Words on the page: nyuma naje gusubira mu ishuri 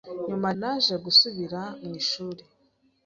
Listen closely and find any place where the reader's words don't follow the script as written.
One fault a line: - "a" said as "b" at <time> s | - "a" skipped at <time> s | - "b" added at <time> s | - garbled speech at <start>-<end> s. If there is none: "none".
none